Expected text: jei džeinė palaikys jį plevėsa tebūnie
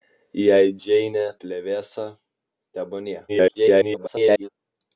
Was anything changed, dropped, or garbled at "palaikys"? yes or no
yes